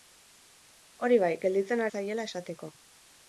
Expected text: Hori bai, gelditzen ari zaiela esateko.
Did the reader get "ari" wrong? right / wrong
wrong